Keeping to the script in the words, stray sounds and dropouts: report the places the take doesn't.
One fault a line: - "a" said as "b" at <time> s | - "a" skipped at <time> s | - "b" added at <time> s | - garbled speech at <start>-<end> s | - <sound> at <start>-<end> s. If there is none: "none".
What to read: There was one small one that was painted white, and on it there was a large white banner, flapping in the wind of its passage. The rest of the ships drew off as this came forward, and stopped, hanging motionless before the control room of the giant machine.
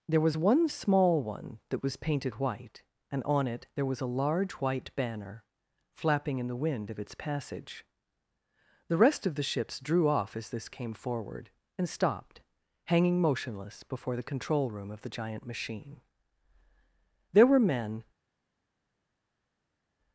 - "There were men" added at 17.3 s